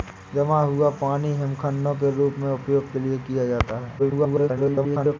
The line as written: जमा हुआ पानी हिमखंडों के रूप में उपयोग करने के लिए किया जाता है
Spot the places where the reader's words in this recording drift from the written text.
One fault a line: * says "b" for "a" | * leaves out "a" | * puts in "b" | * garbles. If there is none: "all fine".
* leaves out "करने"
* garbles